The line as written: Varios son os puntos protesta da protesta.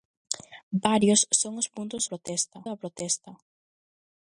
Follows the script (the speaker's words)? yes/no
yes